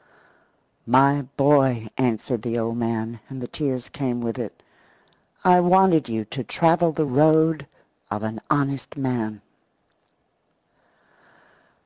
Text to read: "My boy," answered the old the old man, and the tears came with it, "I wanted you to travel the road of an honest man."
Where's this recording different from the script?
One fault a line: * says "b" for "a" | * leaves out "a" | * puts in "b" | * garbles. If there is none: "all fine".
* leaves out "the old"